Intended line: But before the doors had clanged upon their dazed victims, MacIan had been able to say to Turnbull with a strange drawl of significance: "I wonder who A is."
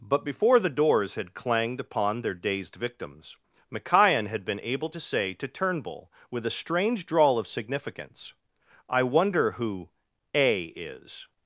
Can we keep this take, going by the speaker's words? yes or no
yes